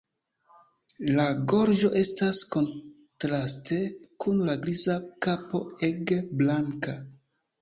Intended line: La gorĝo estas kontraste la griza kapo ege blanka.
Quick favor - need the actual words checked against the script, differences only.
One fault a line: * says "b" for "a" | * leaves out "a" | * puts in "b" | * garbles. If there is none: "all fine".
* puts in "kun"